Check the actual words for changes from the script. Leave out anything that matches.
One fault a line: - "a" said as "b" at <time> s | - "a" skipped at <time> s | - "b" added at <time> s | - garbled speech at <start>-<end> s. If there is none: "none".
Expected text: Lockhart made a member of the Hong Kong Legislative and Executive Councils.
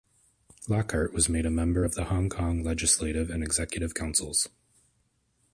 - "was" added at 1.1 s